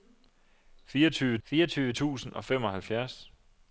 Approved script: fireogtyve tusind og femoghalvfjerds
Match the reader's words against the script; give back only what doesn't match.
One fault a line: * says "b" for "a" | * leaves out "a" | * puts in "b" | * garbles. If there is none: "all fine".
* puts in "fireogtyve"